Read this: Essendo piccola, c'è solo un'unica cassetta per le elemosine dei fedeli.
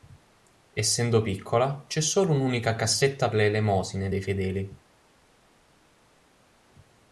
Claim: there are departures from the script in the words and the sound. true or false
true